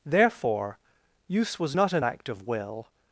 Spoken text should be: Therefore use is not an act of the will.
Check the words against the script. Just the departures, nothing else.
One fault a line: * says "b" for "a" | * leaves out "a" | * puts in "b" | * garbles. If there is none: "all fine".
* says "was" for "is"
* leaves out "the"